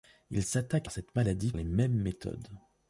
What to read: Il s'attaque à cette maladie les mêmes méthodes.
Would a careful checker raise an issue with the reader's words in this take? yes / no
no